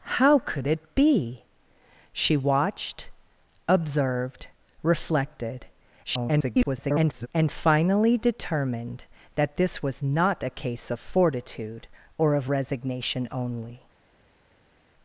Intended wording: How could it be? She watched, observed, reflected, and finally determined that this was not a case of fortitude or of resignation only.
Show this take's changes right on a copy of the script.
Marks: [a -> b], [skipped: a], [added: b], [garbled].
How could it be? She watched, observed, reflected, [garbled] and finally determined that this was not a case of fortitude or of resignation only.